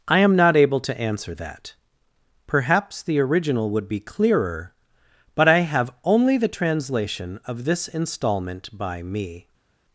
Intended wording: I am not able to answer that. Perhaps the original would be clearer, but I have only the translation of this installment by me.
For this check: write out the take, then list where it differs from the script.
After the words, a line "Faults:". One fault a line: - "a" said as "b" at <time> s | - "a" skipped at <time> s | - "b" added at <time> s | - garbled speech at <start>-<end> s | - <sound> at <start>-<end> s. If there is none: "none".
I am not able to answer that. Perhaps the original would be clearer, but I have only the translation of this installment by me.
Faults:
none